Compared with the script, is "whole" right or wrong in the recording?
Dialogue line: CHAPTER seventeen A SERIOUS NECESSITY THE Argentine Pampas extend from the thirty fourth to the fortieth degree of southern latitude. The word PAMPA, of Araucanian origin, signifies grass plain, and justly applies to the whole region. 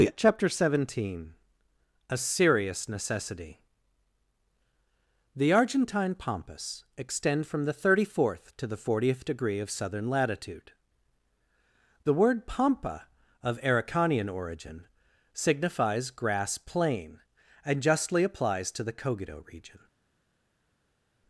wrong